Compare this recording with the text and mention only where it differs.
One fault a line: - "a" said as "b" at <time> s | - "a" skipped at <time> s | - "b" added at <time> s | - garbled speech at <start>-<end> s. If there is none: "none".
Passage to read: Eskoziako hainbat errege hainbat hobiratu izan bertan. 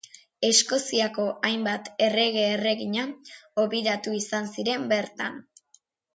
- "hainbat" said as "erregina" at 2.5 s
- "ziren" added at 4.6 s